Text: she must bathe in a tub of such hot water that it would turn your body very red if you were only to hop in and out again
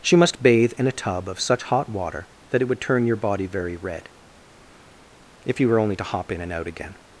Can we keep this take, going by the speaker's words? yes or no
yes